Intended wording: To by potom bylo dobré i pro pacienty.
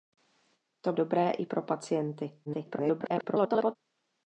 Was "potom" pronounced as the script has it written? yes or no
no